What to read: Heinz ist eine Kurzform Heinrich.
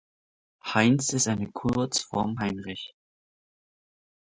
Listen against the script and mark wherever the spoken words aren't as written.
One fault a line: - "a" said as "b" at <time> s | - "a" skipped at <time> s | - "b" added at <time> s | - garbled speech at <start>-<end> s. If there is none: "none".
none